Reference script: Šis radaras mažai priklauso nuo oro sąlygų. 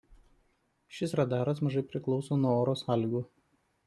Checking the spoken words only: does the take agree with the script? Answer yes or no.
yes